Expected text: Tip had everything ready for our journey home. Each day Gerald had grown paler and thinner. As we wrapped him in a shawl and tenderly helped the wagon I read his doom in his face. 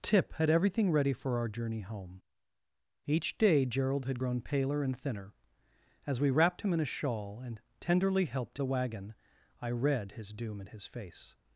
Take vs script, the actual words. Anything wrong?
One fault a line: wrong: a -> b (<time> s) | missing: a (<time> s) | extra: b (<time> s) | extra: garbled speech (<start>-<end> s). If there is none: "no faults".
no faults